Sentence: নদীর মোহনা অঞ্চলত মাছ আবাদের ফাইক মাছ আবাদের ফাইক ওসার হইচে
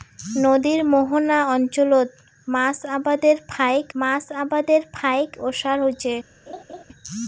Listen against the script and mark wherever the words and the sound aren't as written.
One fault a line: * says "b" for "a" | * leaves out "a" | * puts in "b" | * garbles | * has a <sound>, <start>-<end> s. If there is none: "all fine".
* has a laugh, 6.5-6.8 s